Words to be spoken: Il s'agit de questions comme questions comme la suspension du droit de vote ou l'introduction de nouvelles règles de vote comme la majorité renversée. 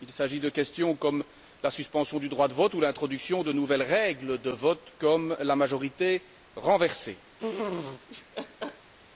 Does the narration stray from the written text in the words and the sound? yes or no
yes